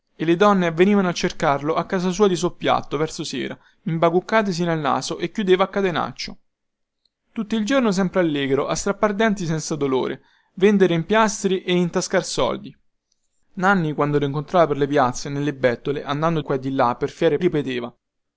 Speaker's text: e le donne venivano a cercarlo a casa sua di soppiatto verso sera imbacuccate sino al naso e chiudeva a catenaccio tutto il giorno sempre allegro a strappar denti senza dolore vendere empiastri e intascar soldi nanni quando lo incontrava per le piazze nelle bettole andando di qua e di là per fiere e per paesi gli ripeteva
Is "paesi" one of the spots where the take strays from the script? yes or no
yes